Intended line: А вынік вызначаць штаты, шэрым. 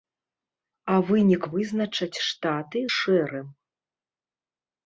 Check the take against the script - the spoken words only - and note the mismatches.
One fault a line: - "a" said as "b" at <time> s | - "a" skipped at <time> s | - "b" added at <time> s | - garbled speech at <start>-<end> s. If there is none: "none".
none